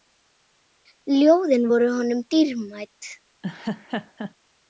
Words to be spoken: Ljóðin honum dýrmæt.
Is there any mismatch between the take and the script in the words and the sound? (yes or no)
yes